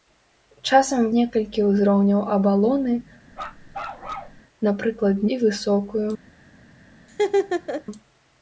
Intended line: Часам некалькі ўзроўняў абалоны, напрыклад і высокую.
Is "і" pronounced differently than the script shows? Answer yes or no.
no